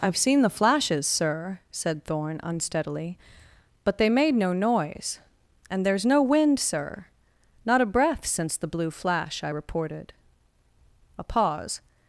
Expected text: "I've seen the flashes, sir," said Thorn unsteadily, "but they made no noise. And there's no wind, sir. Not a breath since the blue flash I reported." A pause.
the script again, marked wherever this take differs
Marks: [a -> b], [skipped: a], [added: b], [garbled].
"I've seen the flashes, sir," said Thorn unsteadily, "but they made no noise. And there's no wind, sir. Not a breath since the blue flash I reported." A pause.